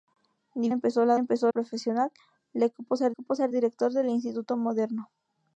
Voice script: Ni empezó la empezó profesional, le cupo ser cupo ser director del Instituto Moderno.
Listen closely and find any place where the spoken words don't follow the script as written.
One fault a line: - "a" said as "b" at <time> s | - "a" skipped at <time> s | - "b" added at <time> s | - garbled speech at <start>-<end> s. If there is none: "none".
none